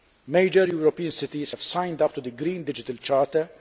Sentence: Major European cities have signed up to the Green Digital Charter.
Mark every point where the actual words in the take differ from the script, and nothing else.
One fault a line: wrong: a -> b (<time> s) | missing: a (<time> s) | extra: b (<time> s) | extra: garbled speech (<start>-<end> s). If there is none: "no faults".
no faults